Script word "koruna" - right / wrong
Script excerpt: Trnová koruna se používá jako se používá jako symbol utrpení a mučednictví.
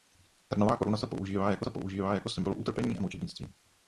right